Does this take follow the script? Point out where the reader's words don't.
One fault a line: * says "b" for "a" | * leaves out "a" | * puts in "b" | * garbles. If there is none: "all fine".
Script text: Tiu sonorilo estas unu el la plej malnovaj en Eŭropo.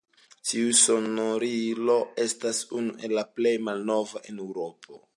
all fine